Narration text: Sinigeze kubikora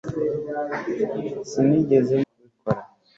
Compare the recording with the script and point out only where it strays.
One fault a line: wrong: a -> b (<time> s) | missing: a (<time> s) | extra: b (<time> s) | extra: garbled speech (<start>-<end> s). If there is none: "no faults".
no faults